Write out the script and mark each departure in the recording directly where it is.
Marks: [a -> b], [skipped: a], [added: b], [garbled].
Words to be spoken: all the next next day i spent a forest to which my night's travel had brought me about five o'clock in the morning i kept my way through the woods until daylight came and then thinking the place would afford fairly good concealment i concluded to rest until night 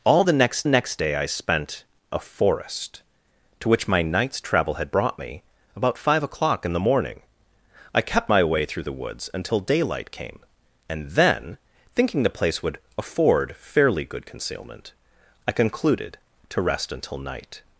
all the next next day i spent a forest to which my night's travel had brought me about five o'clock in the morning i kept my way through the woods until daylight came and then thinking the place would afford fairly good concealment i concluded to rest until night